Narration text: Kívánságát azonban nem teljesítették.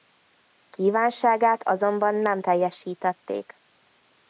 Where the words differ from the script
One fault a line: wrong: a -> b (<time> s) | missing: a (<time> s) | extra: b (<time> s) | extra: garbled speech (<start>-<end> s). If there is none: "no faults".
no faults